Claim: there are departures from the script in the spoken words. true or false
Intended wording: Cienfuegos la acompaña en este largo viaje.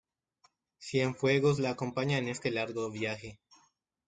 false